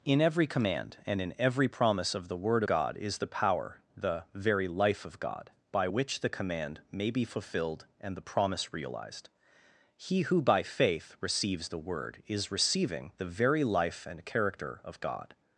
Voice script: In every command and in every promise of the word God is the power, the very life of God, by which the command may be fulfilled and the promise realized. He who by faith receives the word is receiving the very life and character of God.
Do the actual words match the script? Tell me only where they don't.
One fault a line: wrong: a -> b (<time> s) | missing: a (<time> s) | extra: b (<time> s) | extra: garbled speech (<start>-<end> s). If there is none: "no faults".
no faults